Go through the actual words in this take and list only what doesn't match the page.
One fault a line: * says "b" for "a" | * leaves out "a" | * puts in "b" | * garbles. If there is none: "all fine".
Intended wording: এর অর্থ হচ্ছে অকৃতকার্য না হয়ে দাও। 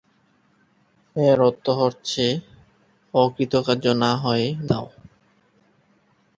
all fine